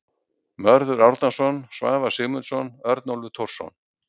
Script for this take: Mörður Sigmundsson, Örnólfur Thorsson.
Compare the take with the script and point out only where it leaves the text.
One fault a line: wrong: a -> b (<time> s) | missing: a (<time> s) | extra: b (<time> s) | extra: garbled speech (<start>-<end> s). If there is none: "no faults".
extra: Árnason Svavar (1.1 s)